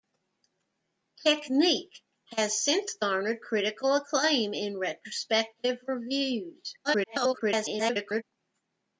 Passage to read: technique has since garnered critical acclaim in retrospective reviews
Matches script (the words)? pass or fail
fail